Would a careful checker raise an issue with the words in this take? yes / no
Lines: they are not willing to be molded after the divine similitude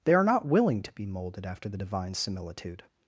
no